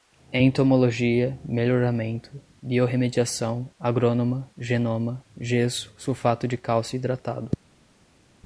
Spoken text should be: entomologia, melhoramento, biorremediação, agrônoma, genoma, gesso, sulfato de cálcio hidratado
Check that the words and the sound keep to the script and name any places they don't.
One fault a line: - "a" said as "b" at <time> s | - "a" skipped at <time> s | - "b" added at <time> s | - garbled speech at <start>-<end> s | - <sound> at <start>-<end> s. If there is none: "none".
none